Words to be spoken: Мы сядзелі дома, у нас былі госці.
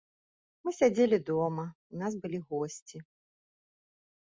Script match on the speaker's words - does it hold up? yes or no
yes